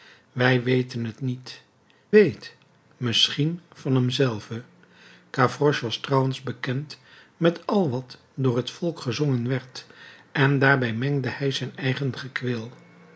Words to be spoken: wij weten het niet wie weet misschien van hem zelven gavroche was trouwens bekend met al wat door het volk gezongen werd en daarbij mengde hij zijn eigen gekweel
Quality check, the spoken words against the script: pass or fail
fail